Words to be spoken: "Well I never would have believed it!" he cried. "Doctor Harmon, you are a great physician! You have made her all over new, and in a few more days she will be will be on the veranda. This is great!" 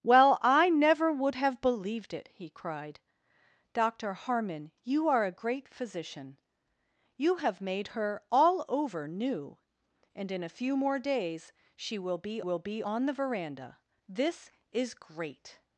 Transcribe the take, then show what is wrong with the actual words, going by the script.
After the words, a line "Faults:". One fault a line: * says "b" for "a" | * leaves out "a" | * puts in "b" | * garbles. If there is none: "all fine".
"Well I never would have believed it!" he cried. "Doctor Harmon, you are a great physician! You have made her all over new, and in a few more days she will be will be on the veranda. This is great!"
Faults:
all fine